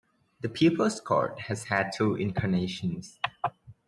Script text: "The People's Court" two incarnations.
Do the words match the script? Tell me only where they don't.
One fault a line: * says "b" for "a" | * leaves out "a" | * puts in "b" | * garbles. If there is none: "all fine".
* puts in "has had"